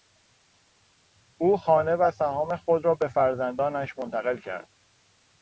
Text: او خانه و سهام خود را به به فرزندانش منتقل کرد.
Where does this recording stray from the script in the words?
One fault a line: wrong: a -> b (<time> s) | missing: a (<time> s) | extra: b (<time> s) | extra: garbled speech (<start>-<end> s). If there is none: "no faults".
missing: به (3.1 s)